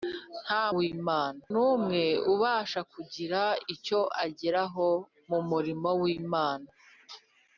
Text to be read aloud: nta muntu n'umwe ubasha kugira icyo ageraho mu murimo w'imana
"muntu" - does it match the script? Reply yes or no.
no